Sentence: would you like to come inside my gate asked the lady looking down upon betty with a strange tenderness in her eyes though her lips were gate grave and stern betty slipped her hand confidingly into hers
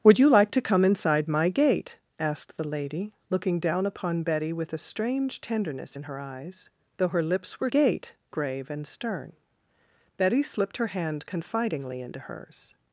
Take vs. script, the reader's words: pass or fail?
pass